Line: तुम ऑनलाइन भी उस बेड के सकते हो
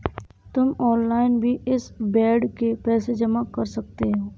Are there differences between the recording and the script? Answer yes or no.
yes